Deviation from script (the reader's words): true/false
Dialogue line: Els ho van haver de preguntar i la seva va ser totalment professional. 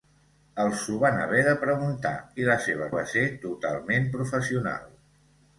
false